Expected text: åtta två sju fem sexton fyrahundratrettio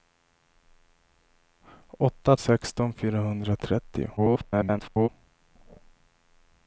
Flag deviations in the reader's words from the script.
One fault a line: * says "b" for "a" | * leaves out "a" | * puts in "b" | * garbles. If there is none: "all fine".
* leaves out "två sju fem"
* garbles